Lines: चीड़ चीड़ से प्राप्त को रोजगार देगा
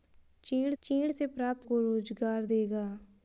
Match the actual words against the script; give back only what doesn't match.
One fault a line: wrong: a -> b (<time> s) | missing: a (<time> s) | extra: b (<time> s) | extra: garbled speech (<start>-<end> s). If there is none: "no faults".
no faults